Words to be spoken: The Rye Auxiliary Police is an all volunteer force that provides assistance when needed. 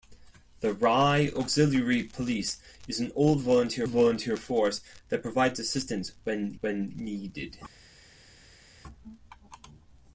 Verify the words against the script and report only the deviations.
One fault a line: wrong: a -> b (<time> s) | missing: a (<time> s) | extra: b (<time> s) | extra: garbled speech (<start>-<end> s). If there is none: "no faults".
extra: volunteer (3.8 s)
extra: when (6.6 s)